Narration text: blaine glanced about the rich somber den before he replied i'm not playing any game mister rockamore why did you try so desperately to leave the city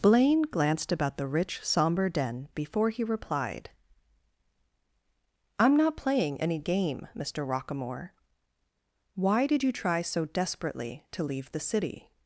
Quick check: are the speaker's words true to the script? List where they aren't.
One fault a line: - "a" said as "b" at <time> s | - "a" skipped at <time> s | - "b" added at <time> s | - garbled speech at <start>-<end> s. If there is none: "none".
none